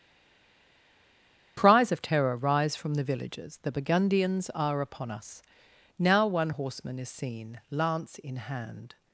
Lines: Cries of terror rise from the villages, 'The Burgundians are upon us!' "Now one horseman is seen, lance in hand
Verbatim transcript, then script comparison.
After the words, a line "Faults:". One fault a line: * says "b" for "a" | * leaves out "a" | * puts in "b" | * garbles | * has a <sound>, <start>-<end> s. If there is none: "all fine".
Cries of terror rise from the villages, 'The Burgundians are upon us!' "Now one horseman is seen, lance in hand
Faults:
all fine